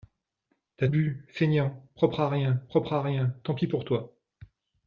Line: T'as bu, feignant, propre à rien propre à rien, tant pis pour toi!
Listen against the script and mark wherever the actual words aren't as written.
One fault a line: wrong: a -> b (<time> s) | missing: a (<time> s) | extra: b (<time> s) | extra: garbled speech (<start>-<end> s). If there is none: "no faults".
no faults